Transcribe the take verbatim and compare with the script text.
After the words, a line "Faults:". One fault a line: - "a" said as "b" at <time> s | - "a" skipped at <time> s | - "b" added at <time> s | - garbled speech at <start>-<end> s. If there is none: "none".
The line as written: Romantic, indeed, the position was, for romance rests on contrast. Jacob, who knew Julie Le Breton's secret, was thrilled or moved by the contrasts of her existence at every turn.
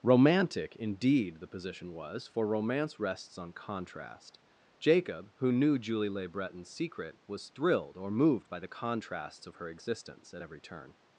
Romantic, indeed, the position was, for romance rests on contrast. Jacob, who knew Julie Le Breton's secret, was thrilled or moved by the contrasts of her existence at every turn.
Faults:
none